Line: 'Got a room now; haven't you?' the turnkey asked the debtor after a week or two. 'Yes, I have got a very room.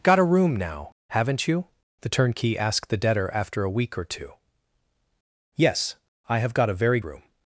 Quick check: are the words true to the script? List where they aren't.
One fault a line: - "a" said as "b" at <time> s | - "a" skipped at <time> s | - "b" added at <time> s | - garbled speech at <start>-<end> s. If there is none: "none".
none